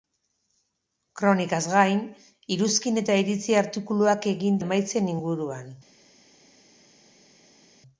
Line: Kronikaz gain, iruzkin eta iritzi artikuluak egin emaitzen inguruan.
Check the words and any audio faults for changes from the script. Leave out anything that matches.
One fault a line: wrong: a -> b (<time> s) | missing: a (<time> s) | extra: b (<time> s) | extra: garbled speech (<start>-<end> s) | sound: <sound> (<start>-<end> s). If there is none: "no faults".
no faults